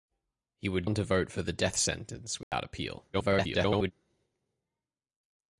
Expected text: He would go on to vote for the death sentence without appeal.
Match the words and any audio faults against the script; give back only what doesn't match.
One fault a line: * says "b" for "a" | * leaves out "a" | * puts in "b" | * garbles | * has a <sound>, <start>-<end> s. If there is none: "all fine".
* leaves out "go"
* has a dropout, 2.4-2.5 s
* garbles